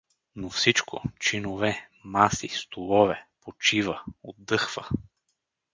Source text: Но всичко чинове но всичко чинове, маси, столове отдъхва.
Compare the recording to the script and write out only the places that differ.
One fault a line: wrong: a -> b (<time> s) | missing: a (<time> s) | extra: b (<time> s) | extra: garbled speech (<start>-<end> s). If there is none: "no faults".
missing: но всичко чинове (1.9 s)
extra: почива (3.4 s)